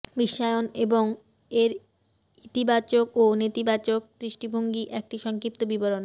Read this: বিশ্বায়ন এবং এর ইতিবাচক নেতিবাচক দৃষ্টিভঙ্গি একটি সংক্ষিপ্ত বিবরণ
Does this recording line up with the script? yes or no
no